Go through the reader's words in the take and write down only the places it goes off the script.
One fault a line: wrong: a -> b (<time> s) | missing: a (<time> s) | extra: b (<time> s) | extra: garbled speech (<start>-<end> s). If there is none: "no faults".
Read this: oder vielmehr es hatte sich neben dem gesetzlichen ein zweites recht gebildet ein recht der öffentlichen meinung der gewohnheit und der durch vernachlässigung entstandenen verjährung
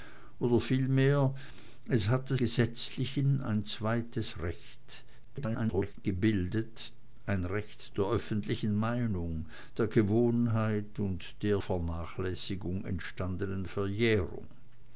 missing: sich neben dem (2.4 s)
extra: garbled speech (5.2-5.9 s)
missing: durch (11.6 s)